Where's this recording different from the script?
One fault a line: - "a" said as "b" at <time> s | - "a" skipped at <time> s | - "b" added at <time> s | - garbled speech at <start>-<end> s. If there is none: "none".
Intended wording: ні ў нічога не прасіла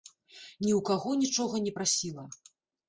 - "каго" added at 0.9 s